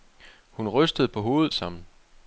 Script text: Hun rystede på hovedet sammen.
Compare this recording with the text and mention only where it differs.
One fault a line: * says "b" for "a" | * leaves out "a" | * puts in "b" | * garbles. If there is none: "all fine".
all fine